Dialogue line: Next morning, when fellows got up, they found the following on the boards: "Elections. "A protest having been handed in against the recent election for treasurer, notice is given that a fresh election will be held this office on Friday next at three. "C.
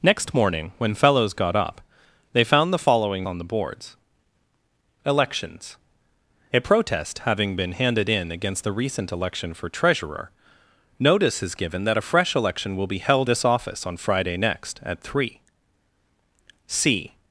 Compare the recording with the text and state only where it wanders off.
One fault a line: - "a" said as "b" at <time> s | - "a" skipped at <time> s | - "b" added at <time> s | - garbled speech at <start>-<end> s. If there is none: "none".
none